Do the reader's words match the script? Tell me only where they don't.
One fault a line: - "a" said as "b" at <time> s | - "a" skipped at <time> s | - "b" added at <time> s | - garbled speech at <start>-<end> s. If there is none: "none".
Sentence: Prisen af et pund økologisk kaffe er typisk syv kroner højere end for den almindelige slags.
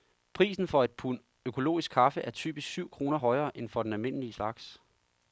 - "af" said as "for" at 0.7 s